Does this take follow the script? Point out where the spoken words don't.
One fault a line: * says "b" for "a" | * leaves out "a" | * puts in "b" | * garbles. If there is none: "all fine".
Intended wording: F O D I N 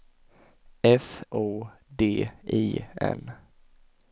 all fine